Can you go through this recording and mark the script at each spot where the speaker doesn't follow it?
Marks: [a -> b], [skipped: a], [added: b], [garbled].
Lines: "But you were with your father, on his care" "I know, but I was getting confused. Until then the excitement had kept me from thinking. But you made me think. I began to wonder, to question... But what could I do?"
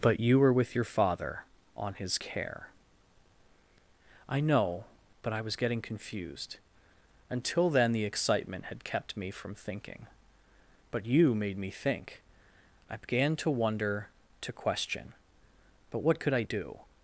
"But you were with your father, on his care" "I know, but I was getting confused. Until then the excitement had kept me from thinking. But you made me think. I began to wonder, to question... But what could I do?"